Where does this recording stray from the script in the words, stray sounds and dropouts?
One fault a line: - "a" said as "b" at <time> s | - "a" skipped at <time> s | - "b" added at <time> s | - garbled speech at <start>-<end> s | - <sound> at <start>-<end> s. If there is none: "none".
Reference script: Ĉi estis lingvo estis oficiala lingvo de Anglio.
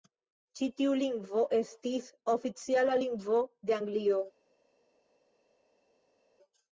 - "estis" said as "tiu" at 0.8 s